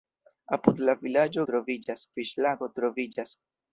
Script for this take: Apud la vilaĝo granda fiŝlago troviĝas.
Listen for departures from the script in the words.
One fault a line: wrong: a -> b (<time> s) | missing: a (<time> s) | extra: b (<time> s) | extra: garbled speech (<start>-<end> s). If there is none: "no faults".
wrong: granda -> troviĝas (1.5 s)